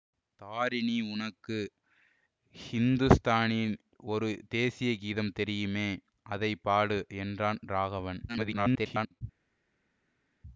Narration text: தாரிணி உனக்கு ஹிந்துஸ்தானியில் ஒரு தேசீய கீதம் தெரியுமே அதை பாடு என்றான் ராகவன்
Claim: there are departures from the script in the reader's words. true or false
true